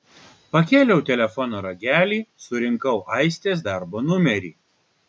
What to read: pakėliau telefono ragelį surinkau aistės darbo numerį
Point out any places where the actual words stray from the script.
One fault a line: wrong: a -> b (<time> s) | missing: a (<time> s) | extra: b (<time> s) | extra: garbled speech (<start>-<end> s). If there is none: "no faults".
no faults